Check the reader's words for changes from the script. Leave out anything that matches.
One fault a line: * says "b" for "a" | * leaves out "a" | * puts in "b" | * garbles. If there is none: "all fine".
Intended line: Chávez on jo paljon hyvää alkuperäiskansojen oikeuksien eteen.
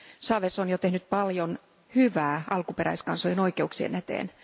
* puts in "tehnyt"